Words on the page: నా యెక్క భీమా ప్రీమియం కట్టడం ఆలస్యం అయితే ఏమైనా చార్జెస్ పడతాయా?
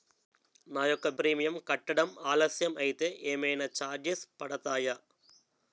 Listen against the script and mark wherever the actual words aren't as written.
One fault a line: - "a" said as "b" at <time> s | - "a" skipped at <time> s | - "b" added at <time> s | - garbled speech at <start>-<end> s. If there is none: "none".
- "భీమా" skipped at 1.1 s